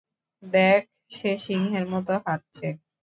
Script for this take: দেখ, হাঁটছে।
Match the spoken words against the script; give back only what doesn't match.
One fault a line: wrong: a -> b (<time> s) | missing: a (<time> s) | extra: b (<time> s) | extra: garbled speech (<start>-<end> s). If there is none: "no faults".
extra: সে সিংহের মতো (1.1 s)